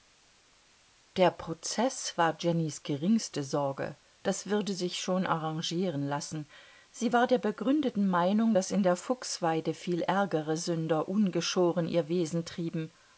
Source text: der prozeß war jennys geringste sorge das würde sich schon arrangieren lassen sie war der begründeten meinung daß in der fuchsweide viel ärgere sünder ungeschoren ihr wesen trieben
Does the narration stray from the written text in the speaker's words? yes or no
no